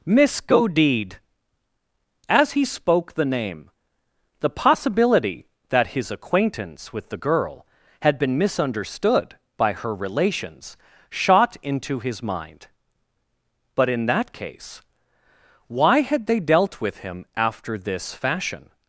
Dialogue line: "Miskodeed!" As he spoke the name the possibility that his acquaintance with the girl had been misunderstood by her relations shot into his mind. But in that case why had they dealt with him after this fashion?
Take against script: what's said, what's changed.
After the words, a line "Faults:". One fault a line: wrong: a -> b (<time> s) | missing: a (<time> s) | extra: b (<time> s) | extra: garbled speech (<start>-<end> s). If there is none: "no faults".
"Miskodeed!" As he spoke the name the possibility that his acquaintance with the girl had been misunderstood by her relations shot into his mind. But in that case why had they dealt with him after this fashion?
Faults:
no faults